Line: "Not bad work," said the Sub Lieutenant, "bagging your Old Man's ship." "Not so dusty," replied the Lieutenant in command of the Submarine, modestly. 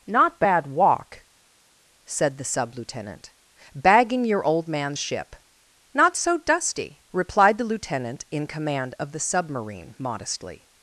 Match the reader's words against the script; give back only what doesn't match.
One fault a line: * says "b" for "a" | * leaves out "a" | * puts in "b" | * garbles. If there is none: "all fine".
* says "walk" for "work"